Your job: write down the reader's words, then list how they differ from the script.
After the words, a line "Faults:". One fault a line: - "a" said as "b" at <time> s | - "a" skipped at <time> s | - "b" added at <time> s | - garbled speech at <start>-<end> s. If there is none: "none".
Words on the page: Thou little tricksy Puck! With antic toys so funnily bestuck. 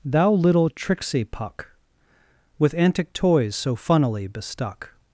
Thou little tricksy Puck! With antic toys so funnily bestuck.
Faults:
none